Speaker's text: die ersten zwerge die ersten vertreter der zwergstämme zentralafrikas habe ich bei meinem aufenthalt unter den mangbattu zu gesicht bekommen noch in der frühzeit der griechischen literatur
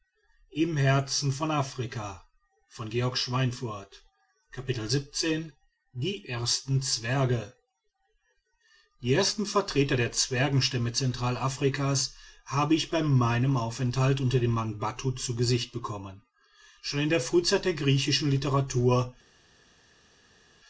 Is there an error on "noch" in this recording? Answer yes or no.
yes